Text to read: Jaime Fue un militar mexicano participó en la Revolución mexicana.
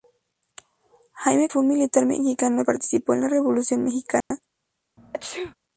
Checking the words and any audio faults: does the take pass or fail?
fail